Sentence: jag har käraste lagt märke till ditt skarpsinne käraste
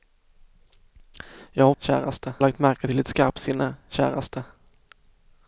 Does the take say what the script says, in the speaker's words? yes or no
yes